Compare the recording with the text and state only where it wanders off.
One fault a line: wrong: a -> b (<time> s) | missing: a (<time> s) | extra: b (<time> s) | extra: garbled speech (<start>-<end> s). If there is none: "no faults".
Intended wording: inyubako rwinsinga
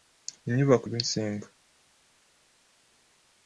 no faults